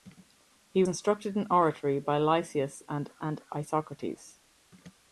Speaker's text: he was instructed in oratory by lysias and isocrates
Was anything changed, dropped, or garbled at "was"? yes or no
yes